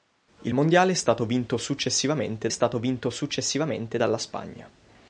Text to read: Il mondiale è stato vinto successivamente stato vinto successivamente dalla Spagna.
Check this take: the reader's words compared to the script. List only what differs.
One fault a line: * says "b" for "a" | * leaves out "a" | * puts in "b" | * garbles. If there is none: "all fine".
all fine